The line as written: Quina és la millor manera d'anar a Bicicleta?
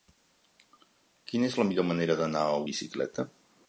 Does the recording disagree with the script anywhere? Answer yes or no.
no